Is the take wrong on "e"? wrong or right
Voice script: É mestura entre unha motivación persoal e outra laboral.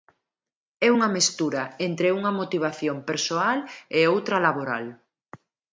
right